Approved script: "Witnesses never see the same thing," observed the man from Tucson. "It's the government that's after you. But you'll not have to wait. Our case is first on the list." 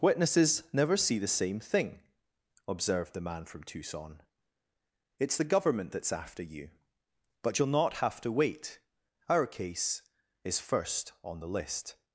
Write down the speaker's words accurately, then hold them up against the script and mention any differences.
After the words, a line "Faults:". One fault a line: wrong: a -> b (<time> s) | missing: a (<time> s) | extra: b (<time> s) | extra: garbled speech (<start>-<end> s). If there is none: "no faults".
"Witnesses never see the same thing," observed the man from Tucson. "It's the government that's after you. But you'll not have to wait. Our case is first on the list."
Faults:
no faults